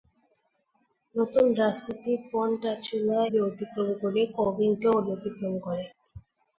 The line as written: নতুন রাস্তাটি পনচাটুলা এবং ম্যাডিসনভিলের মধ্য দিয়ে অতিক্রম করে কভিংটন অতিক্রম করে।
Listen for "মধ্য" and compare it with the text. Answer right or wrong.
wrong